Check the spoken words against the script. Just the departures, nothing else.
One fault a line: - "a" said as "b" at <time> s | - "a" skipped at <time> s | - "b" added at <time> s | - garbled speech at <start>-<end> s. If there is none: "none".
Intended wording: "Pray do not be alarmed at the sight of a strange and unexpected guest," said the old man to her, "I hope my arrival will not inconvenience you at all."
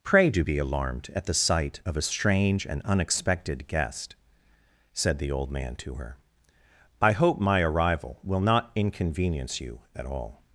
- "not" skipped at 0.4 s